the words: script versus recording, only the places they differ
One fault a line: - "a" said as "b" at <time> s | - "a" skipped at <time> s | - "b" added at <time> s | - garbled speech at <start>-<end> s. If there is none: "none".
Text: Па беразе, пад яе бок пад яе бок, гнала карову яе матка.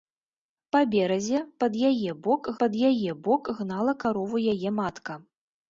none